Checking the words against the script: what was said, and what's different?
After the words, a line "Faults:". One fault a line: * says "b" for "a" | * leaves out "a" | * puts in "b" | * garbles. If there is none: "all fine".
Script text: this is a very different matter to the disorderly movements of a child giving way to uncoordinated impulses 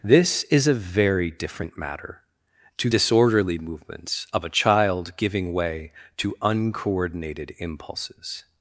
this is a very different matter to disorderly movements of a child giving way to uncoordinated impulses
Faults:
* leaves out "the"